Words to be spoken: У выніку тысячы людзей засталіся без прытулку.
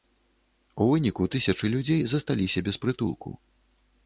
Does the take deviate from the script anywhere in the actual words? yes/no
no